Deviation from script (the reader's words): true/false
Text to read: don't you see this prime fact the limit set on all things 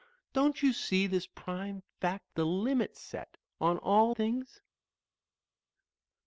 false